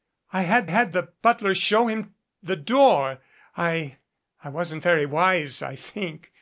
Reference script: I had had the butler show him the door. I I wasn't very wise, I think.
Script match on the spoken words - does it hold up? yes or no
yes